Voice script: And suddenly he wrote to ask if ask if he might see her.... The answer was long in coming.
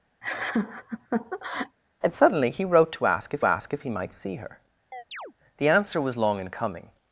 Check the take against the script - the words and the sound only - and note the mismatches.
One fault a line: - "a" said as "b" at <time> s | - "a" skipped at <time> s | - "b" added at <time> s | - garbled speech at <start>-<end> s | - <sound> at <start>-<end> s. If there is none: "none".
- laugh at 0.2-1.8 s
- chirp at 4.9-5.3 s